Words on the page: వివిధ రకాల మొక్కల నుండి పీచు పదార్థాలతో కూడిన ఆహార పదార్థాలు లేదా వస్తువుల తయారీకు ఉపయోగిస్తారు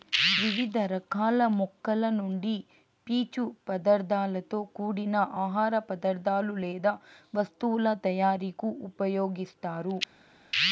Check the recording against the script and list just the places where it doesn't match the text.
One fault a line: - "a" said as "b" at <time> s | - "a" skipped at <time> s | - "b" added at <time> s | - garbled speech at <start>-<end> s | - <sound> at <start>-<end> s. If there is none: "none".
none